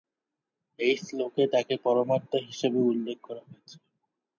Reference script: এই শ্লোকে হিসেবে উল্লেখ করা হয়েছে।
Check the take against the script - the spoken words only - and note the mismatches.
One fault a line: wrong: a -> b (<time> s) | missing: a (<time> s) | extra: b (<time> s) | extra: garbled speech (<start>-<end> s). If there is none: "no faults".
extra: তাকে পরমাত্মা (1.5 s)